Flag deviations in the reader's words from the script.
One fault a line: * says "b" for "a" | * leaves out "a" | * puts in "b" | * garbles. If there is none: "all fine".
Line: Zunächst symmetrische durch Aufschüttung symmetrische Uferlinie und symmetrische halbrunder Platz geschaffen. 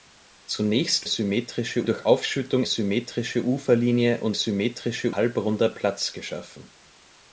all fine